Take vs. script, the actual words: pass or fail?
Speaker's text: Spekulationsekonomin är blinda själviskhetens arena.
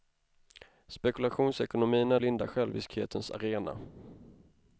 pass